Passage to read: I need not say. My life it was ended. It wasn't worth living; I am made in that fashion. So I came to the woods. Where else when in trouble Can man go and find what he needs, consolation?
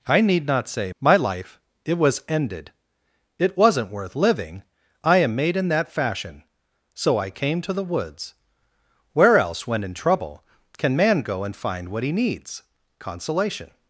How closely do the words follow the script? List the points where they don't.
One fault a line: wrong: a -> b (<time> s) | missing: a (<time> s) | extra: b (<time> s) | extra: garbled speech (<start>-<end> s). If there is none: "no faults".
no faults